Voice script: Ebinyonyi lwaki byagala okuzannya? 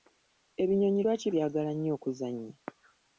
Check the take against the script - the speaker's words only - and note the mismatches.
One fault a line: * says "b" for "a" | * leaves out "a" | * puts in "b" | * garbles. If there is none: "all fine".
* puts in "nnyo"